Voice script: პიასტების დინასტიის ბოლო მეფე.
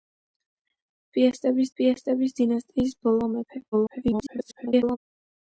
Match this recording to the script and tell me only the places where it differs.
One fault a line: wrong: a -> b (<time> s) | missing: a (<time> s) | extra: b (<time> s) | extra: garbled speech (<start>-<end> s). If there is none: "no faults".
extra: პიასტების (1.8 s)
extra: garbled speech (3.7-5.0 s)